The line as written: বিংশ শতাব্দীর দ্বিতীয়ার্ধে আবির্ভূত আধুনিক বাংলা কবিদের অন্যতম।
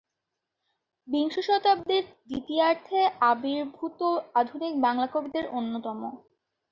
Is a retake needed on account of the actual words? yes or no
no